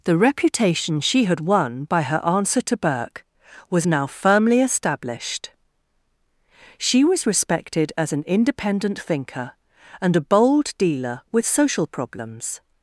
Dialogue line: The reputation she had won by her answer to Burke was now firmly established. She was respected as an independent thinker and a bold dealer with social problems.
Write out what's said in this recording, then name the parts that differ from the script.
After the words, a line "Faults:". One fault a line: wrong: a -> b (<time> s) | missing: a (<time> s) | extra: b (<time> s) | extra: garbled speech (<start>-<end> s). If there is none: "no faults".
The reputation she had won by her answer to Burke was now firmly established. She was respected as an independent thinker and a bold dealer with social problems.
Faults:
no faults